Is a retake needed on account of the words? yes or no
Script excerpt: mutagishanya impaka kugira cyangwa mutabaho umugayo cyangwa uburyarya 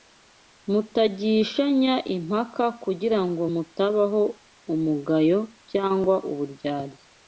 yes